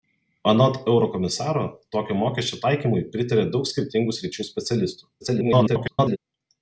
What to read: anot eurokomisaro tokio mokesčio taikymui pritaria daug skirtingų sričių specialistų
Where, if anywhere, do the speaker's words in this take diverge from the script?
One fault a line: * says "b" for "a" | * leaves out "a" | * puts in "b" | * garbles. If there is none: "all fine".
* garbles